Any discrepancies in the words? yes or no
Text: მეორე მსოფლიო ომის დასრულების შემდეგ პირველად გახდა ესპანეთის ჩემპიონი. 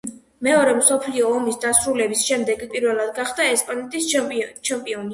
no